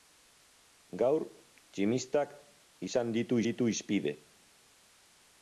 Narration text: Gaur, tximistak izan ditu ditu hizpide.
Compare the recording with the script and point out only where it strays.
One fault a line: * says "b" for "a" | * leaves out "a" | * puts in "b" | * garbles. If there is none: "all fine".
all fine